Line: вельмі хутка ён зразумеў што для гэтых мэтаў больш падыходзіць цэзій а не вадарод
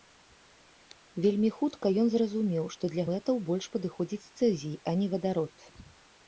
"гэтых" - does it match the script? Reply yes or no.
no